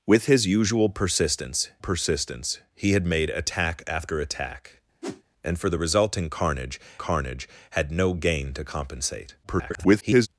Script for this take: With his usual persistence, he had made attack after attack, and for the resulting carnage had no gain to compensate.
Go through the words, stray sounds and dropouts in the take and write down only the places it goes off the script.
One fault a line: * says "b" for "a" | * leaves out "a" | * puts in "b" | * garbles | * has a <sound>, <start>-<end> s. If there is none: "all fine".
* puts in "persistence"
* has a whoosh, 5.0-5.2 s
* puts in "carnage"
* garbles